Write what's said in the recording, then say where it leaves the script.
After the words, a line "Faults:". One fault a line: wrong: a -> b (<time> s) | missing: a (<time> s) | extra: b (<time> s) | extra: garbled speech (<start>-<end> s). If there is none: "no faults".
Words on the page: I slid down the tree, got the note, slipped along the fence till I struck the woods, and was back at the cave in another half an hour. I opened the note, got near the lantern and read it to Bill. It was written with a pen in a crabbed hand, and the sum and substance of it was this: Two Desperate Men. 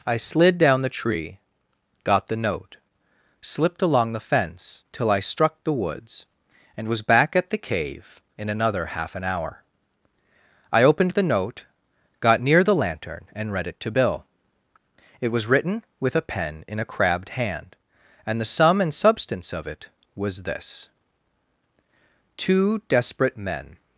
I slid down the tree, got the note, slipped along the fence till I struck the woods, and was back at the cave in another half an hour. I opened the note, got near the lantern and read it to Bill. It was written with a pen in a crabbed hand, and the sum and substance of it was this: Two Desperate Men.
Faults:
no faults